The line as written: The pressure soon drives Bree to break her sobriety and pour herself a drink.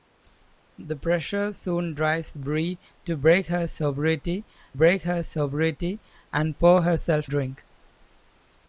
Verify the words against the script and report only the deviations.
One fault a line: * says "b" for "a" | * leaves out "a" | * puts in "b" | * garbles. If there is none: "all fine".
* puts in "break her sobriety"
* leaves out "a"